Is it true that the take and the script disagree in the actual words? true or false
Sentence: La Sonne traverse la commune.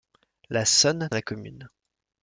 true